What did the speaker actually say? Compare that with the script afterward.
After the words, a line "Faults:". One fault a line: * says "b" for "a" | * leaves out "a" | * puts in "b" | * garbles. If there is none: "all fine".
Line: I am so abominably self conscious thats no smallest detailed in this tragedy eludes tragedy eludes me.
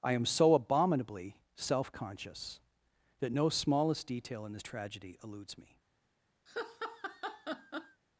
I am so abominably self conscious that no smallest detail in this tragedy eludes me.
Faults:
* says "that" for "thats"
* says "detail" for "detailed"
* leaves out "tragedy eludes"